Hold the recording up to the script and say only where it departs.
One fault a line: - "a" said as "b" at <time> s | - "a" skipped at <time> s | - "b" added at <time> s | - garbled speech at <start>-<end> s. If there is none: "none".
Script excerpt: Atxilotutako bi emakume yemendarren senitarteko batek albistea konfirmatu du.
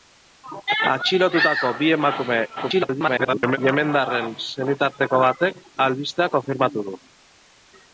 - garbled speech at 2.6-3.6 s